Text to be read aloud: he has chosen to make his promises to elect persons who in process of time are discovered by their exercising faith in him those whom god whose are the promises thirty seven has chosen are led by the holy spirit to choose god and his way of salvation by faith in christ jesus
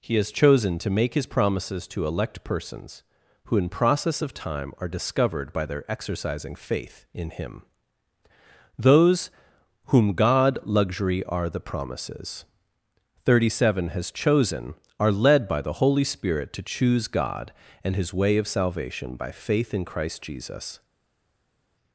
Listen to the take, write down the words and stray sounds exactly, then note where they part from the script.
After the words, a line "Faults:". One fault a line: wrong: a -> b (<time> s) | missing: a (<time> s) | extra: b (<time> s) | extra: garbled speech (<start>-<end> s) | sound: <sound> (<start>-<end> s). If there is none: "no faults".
he has chosen to make his promises to elect persons who in process of time are discovered by their exercising faith in him those whom god luxury are the promises thirty seven has chosen are led by the holy spirit to choose god and his way of salvation by faith in christ jesus
Faults:
wrong: whose -> luxury (10.6 s)